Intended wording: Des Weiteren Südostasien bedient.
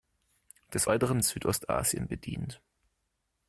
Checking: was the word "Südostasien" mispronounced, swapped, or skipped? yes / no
no